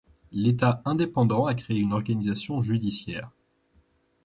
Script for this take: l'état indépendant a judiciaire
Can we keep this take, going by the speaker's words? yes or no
no